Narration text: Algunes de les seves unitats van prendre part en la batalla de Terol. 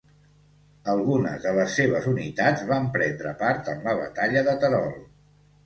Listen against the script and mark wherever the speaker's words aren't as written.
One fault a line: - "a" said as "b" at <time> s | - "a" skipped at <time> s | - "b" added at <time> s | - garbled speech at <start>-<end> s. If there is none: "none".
none